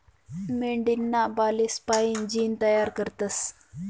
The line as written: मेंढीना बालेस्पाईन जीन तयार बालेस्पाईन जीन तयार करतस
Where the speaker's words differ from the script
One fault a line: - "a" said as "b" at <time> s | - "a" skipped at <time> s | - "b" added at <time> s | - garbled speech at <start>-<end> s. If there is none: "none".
- "बालेस्पाईन जीन तयार" skipped at 2.9 s